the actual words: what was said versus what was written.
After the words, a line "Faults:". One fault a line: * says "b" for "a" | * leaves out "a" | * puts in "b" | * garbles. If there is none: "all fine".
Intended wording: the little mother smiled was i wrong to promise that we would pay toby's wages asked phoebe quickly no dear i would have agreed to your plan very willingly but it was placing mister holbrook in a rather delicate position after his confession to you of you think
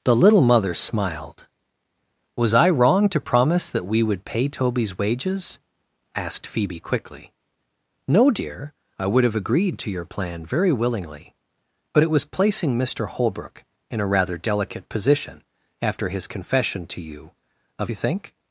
the little mother smiled was i wrong to promise that we would pay toby's wages asked phoebe quickly no dear i would have agreed to your plan very willingly but it was placing mister holbrook in a rather delicate position after his confession to you of you think
Faults:
all fine